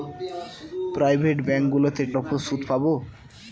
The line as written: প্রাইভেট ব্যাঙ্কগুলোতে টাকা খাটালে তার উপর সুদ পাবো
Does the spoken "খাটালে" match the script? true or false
false